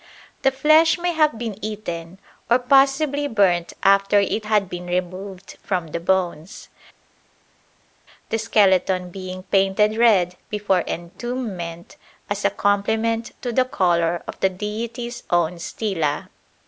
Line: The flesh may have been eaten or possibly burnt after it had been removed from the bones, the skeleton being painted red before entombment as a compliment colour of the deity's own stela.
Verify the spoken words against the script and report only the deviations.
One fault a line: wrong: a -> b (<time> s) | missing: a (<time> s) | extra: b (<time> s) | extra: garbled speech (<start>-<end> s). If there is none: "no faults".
extra: to the (13.4 s)